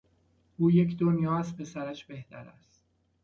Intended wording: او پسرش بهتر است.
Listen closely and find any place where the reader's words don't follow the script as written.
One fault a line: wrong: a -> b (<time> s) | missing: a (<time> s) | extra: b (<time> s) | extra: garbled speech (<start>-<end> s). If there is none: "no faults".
extra: یک دنیا از (0.7 s)